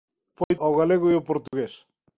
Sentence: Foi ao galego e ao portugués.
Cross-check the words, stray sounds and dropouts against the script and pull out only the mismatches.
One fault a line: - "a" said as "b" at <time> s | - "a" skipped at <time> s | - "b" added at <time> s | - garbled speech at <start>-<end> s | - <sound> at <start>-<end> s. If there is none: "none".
- dropout at 0.4-0.5 s
- dropout at 1.5-1.5 s